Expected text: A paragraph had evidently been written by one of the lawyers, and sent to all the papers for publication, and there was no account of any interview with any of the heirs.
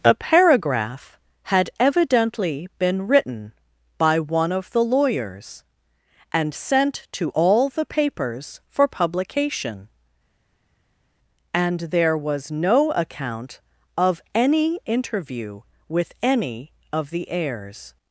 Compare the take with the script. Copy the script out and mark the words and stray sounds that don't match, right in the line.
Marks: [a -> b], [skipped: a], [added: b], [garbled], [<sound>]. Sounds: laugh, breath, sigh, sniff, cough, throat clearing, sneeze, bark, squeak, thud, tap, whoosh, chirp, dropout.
A paragraph had evidently been written by one of the lawyers, and sent to all the papers for publication, and there was no account of any interview with any of the heirs.